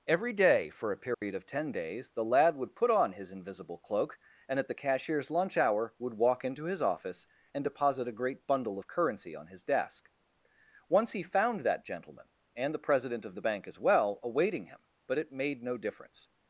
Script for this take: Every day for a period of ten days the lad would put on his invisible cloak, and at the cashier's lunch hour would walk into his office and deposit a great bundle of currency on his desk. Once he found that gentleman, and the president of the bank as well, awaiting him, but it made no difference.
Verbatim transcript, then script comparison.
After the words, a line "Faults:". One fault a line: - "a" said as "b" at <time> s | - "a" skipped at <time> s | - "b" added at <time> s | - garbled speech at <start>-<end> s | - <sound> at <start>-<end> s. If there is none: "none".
Every day for a period of ten days the lad would put on his invisible cloak, and at the cashier's lunch hour would walk into his office and deposit a great bundle of currency on his desk. Once he found that gentleman, and the president of the bank as well, awaiting him, but it made no difference.
Faults:
- dropout at 1.1-1.2 s